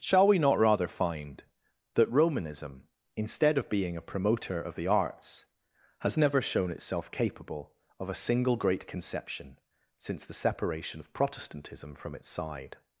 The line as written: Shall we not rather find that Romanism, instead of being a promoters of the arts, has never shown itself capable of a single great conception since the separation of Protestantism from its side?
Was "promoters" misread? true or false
true